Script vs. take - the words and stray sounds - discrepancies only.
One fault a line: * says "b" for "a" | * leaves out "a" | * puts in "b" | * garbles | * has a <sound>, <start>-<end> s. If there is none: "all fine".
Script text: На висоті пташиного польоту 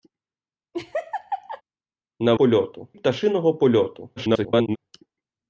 * has a laugh, 0.7-1.6 s
* says "польоту" for "висоті"
* garbles